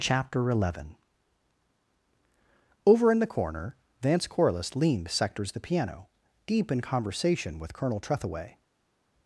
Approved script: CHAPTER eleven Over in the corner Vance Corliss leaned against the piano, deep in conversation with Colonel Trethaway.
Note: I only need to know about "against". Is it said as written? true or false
false